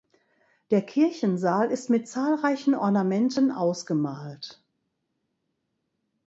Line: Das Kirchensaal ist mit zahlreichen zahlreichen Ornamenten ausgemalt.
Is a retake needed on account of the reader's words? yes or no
yes